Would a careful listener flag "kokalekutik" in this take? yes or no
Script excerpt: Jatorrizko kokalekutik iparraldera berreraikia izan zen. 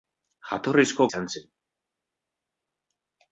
yes